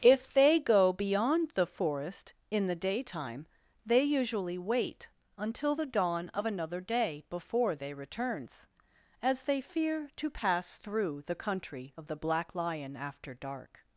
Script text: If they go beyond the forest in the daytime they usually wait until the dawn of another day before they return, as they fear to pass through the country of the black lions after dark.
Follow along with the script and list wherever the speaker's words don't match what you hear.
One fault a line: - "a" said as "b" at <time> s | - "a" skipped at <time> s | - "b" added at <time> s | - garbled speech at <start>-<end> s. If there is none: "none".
- "return" said as "returns" at 7.9 s
- "lions" said as "lion" at 12.5 s